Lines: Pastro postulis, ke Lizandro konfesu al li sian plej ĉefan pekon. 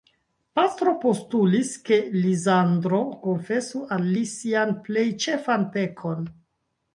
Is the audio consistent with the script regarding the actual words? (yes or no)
yes